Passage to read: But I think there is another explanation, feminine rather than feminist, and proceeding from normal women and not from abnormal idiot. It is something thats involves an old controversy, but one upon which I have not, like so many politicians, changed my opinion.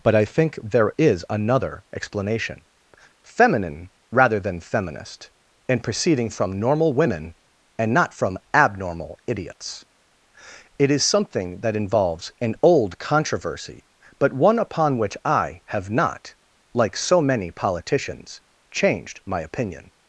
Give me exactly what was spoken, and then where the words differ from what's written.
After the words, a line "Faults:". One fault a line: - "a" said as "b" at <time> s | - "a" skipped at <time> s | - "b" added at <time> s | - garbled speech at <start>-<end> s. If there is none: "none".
But I think there is another explanation, feminine rather than feminist, and proceeding from normal women and not from abnormal idiots. It is something that involves an old controversy, but one upon which I have not, like so many politicians, changed my opinion.
Faults:
- "idiot" said as "idiots" at 9.3 s
- "thats" said as "that" at 11.6 s